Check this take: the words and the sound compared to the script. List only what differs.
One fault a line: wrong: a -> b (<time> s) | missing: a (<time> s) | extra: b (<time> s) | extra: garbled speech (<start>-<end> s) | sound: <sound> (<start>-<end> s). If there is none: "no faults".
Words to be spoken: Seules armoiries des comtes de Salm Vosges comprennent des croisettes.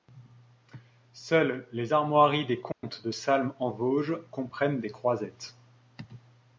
extra: les (1.7 s)
sound: dropout (2.7-2.8 s)
extra: en (3.6 s)